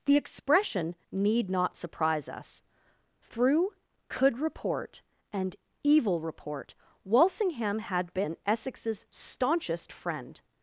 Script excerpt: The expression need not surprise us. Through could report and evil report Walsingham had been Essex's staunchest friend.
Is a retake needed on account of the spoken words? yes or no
no